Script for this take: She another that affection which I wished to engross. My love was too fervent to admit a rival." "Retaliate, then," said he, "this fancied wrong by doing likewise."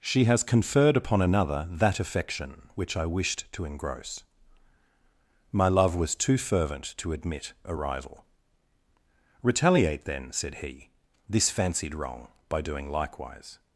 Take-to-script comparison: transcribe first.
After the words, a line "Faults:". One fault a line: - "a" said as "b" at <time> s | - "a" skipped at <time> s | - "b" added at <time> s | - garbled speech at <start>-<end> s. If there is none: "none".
She has conferred upon another that affection which I wished to engross. My love was too fervent to admit a rival." "Retaliate, then," said he, "this fancied wrong by doing likewise."
Faults:
- "has conferred upon" added at 0.2 s